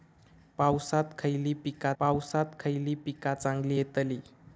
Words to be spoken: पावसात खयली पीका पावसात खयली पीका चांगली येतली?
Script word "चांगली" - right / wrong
right